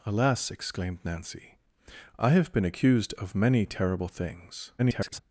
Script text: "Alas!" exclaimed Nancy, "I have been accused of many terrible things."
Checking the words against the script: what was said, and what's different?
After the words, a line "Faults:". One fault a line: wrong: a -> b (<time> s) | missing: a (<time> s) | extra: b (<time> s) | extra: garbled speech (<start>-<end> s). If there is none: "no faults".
"Alas!" exclaimed Nancy, "I have been accused of many terrible things." [garbled]
Faults:
extra: garbled speech (4.8-5.2 s)